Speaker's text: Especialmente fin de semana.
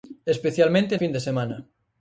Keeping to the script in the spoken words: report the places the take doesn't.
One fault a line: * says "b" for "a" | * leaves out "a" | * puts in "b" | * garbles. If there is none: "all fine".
all fine